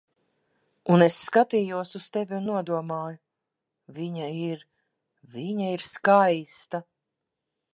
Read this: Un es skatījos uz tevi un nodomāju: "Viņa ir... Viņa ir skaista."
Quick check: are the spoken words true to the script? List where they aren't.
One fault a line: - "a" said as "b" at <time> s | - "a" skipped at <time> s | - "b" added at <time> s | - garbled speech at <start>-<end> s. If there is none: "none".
none